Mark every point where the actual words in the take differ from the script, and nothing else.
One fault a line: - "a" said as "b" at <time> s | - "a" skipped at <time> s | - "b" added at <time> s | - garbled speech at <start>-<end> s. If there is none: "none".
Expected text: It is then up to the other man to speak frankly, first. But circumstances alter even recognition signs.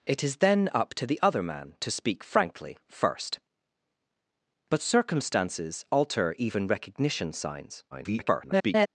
- garbled speech at 7.9-8.9 s